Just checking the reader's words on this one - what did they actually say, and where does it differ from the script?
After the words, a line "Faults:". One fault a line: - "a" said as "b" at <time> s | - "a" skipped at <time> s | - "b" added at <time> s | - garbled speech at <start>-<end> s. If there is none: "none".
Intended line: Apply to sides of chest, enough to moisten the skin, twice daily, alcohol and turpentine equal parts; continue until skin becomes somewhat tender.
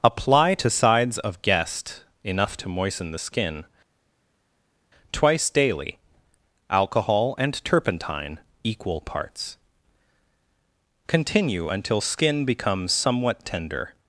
Apply to sides of guest, enough to moisten the skin, twice daily, alcohol and turpentine equal parts; continue until skin becomes somewhat tender.
Faults:
- "chest" said as "guest" at 1.4 s